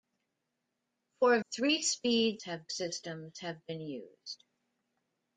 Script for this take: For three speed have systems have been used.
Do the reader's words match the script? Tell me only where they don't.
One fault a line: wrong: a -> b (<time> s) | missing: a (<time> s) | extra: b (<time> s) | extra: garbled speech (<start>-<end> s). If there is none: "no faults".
no faults